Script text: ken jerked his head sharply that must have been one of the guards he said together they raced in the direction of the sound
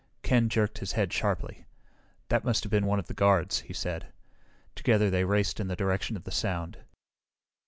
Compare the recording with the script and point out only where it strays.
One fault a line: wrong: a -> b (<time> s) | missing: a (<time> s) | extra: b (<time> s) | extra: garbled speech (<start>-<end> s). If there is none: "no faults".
no faults